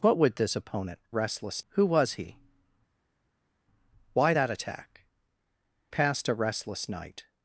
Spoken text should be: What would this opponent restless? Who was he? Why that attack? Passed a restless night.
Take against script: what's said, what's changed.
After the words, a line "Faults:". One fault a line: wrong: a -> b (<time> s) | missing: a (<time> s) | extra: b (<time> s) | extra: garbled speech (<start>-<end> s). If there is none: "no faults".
What would this opponent restless? Who was he? Why that attack? Passed a restless night.
Faults:
no faults